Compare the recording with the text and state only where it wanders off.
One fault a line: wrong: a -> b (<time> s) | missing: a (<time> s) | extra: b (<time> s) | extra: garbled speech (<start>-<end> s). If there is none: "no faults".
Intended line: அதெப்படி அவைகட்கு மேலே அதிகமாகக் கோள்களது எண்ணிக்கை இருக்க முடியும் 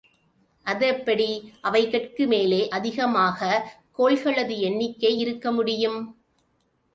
no faults